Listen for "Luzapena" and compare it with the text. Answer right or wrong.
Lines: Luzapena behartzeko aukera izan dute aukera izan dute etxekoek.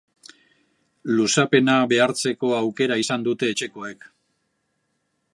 right